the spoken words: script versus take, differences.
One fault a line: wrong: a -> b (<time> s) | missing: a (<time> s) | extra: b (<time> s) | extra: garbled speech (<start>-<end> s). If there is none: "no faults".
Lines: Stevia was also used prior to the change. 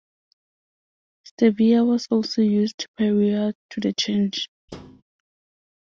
no faults